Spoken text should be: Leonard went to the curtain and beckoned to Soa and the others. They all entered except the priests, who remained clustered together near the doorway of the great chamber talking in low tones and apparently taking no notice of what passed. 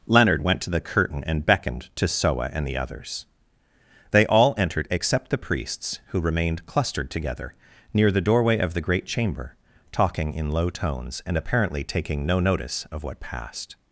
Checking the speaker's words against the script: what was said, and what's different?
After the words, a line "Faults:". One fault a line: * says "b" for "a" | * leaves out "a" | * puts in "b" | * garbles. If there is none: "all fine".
Leonard went to the curtain and beckoned to Soa and the others. They all entered except the priests, who remained clustered together near the doorway of the great chamber talking in low tones and apparently taking no notice of what passed.
Faults:
all fine